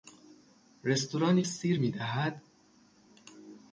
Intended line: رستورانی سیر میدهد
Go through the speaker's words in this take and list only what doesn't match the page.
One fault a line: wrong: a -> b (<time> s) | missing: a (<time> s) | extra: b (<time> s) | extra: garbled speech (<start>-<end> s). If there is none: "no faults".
no faults